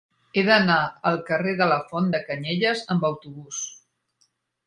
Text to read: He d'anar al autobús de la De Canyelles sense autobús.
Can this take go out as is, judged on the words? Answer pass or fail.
fail